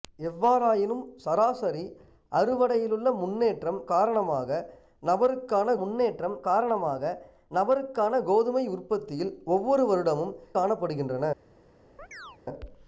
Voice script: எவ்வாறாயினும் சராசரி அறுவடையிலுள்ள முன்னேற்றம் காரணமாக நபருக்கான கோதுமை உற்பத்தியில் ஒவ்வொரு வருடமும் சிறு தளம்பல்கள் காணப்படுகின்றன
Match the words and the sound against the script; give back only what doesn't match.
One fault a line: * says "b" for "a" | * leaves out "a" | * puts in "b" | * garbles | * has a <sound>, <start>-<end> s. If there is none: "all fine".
* puts in "முன்னேற்றம் காரணமாக நபருக்கான"
* leaves out "சிறு தளம்பல்கள்"
* has a chirp, 12.0-12.4 s